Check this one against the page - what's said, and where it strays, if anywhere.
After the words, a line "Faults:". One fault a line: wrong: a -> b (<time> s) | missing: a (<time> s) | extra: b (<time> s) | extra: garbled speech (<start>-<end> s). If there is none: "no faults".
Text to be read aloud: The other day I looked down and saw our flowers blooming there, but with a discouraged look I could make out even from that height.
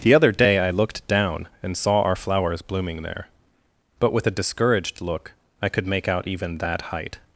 The other day I looked down and saw our flowers blooming there, but with a discouraged look I could make out even that height.
Faults:
missing: from (6.6 s)